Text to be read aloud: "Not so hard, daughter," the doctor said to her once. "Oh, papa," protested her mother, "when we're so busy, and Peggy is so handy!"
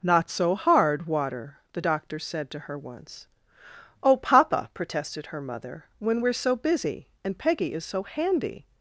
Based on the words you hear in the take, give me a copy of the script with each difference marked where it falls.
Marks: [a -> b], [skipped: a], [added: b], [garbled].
"Not so hard, [daughter," -> water] the doctor said to her once. "Oh, papa," protested her mother, "when we're so busy, and Peggy is so handy!"